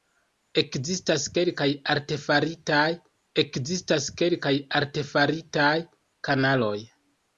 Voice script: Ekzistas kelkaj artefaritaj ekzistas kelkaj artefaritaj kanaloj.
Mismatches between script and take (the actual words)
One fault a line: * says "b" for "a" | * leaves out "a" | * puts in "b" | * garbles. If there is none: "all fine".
all fine